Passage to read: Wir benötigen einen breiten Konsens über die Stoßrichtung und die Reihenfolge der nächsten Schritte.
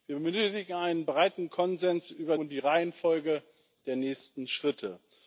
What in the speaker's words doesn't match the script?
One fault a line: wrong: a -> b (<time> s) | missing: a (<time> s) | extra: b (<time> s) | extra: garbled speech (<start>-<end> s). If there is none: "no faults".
missing: die Stoßrichtung (2.4 s)